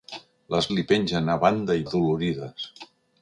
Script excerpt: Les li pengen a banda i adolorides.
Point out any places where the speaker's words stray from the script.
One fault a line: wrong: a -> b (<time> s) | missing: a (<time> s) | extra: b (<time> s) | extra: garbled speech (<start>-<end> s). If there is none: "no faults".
no faults